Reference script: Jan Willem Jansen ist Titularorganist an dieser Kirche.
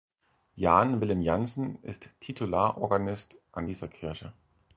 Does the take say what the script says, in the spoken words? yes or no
yes